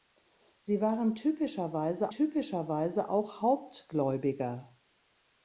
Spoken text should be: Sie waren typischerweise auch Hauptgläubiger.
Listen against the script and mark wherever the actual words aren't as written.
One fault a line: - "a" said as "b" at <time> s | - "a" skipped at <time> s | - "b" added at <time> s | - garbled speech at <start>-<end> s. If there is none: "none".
- "typischerweise" added at 2.1 s